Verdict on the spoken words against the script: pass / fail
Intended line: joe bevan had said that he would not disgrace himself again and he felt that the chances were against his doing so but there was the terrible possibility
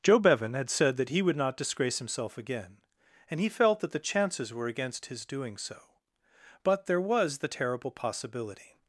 pass